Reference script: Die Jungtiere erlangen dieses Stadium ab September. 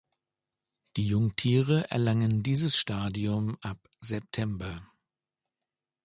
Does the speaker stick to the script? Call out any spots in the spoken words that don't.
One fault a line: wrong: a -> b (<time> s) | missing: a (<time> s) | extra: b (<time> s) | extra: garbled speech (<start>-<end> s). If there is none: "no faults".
no faults